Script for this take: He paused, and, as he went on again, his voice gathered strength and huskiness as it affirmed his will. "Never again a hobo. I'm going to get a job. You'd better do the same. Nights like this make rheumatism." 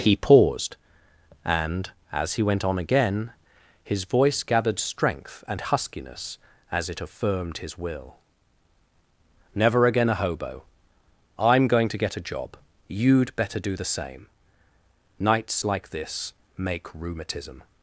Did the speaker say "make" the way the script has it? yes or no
yes